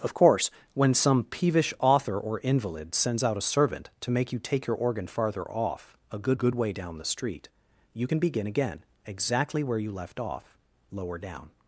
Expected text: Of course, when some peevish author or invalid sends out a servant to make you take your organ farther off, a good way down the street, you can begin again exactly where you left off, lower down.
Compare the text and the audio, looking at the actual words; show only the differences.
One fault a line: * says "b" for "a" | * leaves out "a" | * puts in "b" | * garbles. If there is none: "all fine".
* puts in "good"